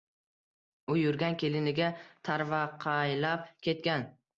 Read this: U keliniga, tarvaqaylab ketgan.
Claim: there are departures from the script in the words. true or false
true